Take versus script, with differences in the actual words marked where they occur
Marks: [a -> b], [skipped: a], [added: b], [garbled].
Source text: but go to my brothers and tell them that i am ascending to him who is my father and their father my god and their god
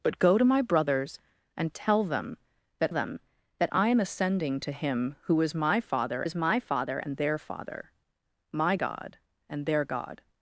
but go to my brothers and tell them that [added: them that] i am ascending to him who is my father [added: is my father] and their father my god and their god